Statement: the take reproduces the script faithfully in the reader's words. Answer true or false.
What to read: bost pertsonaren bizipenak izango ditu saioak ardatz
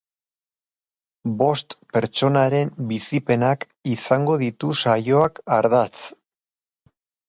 true